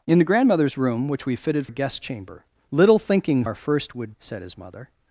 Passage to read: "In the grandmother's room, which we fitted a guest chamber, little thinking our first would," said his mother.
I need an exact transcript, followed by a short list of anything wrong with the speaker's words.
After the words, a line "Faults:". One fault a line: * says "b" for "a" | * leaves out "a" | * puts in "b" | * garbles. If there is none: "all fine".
"In the grandmother's room, which we fitted a guest chamber, little thinking our first would," said his mother.
Faults:
all fine